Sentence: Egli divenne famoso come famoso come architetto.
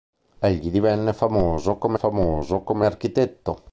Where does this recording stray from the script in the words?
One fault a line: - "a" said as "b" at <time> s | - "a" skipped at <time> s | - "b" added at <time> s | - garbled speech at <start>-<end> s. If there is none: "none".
none